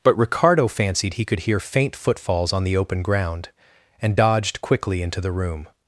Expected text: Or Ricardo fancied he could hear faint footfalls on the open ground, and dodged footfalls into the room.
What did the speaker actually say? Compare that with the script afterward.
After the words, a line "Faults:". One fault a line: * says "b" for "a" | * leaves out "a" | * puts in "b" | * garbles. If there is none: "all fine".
But Ricardo fancied he could hear faint footfalls on the open ground, and dodged quickly into the room.
Faults:
* says "But" for "Or"
* says "quickly" for "footfalls"